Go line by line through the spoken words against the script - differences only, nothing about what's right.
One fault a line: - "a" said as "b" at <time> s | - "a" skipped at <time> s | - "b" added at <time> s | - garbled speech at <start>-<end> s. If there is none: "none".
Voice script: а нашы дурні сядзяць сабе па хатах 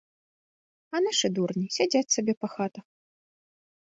none